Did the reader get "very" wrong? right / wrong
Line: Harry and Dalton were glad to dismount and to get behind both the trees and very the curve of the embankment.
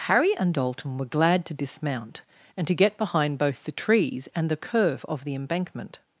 wrong